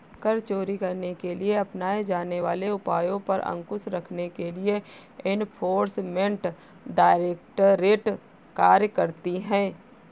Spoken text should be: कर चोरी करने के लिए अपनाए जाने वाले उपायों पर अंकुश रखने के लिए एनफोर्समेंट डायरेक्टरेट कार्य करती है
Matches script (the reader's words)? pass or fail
pass